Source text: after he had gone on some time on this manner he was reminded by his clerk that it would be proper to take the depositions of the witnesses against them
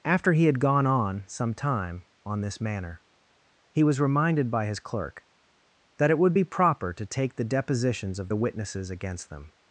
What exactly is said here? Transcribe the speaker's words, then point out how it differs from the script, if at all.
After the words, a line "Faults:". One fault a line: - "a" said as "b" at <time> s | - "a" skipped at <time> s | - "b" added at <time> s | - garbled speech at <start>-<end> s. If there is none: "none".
after he had gone on some time on this manner he was reminded by his clerk that it would be proper to take the depositions of the witnesses against them
Faults:
none